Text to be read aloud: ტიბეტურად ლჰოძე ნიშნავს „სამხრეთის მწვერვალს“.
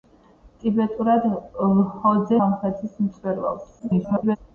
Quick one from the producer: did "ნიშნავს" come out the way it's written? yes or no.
no